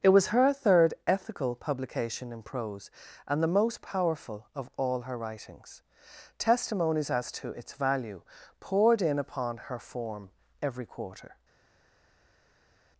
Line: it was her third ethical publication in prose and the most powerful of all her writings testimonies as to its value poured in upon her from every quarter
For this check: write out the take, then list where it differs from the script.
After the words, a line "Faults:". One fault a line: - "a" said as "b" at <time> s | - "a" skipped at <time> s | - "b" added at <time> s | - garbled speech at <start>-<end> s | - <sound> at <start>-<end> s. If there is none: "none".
it was her third ethical publication in prose and the most powerful of all her writings testimonies as to its value poured in upon her form every quarter
Faults:
- "from" said as "form" at 9.8 s